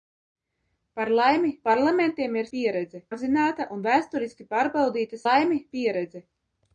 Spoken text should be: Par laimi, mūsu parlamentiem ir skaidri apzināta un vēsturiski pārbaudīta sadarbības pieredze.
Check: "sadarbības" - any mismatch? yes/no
yes